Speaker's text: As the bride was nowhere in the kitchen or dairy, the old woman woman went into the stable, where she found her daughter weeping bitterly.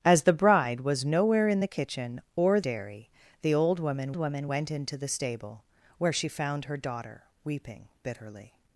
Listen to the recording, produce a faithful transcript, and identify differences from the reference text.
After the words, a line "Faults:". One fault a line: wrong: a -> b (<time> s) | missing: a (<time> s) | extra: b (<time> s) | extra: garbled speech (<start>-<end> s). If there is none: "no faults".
As the bride was nowhere in the kitchen or dairy, the old woman woman went into the stable, where she found her daughter weeping bitterly.
Faults:
no faults